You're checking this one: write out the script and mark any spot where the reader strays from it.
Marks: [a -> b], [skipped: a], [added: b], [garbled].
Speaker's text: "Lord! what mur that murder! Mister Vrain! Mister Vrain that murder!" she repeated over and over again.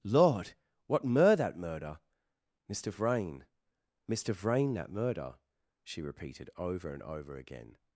"Lord! what mur that murder! Mister Vrain! Mister Vrain that murder!" she repeated over and over again.